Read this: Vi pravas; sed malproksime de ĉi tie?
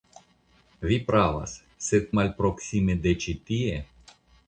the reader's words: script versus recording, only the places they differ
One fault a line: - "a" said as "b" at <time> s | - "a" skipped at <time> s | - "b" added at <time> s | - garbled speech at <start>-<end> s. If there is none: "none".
none